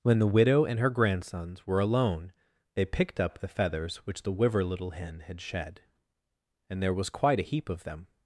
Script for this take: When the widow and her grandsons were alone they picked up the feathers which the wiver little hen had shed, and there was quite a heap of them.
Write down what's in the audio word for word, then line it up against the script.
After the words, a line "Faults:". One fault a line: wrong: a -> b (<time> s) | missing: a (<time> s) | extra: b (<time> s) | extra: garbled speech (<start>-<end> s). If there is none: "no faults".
When the widow and her grandsons were alone they picked up the feathers which the wiver little hen had shed, and there was quite a heap of them.
Faults:
no faults